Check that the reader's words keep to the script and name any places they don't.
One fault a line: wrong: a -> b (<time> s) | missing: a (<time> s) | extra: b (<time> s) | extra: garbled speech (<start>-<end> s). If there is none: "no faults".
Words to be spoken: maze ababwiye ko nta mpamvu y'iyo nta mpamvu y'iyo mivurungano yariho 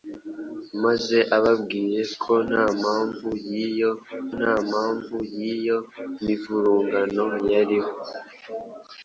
no faults